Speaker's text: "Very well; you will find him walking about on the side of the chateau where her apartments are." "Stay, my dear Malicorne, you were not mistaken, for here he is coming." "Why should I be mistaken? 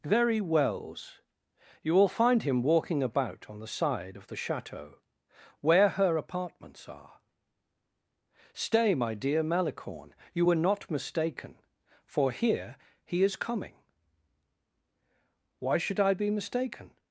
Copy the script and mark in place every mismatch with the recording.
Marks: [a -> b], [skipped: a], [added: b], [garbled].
"Very [well; -> wells] you will find him walking about on the side of the chateau where her apartments are." "Stay, my dear Malicorne, you were not mistaken, for here he is coming." "Why should I be mistaken?